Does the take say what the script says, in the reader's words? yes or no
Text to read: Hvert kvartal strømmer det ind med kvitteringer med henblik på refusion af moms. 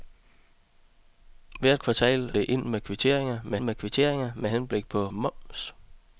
no